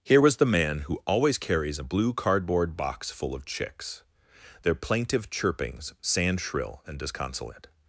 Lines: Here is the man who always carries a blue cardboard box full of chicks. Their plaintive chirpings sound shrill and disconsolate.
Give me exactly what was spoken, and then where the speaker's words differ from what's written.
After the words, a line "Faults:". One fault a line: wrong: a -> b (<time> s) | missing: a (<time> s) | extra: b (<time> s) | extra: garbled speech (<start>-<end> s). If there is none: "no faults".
Here was the man who always carries a blue cardboard box full of chicks. Their plaintive chirpings sand shrill and disconsolate.
Faults:
wrong: is -> was (0.2 s)
wrong: sound -> sand (6.0 s)